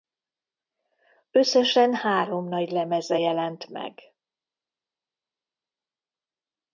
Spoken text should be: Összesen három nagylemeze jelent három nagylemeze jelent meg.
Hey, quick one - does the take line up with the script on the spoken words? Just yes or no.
no